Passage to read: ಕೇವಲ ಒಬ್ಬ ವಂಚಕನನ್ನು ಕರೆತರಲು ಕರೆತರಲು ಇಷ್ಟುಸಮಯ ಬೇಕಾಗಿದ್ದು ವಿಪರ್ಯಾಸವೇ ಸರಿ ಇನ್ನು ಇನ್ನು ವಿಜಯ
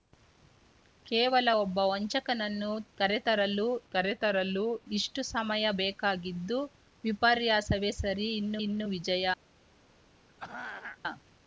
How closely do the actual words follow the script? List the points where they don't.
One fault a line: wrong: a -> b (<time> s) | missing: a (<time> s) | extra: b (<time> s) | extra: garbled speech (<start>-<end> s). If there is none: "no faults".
no faults